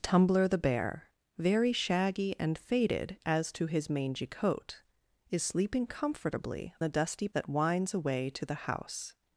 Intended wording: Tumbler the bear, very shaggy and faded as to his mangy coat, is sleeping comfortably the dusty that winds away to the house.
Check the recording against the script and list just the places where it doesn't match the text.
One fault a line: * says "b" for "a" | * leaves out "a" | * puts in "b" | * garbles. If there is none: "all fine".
all fine